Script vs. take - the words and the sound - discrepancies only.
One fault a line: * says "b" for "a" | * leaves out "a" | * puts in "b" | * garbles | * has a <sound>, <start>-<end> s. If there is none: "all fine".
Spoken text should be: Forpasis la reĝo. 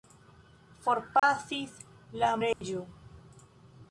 * has a dropout, 1.2-1.2 s
* has a dropout, 2.5-2.6 s